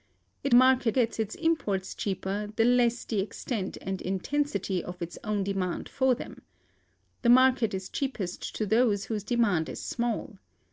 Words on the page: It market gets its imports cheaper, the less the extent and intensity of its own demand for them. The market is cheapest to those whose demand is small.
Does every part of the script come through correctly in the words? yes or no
yes